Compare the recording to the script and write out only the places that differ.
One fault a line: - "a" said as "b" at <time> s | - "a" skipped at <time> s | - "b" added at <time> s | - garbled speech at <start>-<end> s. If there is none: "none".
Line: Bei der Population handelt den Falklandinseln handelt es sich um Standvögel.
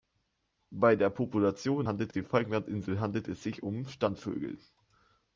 none